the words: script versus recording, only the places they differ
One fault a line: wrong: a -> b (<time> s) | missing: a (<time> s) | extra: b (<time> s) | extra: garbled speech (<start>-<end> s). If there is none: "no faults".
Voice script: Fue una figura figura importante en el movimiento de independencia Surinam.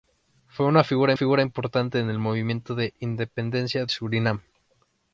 no faults